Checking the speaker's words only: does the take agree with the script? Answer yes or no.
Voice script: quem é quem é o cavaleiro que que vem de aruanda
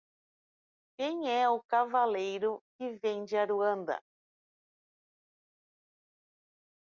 no